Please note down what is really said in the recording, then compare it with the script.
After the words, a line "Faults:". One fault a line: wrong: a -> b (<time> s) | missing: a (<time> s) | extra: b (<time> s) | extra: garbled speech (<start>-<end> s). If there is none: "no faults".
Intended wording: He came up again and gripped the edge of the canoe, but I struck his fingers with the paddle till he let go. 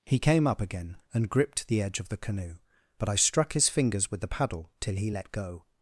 He came up again and gripped the edge of the canoe, but I struck his fingers with the paddle till he let go.
Faults:
no faults